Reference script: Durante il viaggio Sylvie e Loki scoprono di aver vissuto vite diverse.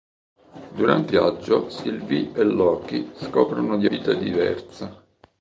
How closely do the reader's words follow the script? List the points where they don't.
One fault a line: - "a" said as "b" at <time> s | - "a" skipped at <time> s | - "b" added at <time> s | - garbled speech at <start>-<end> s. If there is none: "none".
- "il" skipped at 1.1 s
- "aver vissuto" skipped at 3.9 s